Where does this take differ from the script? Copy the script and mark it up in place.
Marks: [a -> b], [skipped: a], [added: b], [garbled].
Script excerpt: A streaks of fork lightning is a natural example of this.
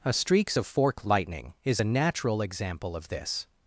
A streaks of fork lightning is a natural example of this.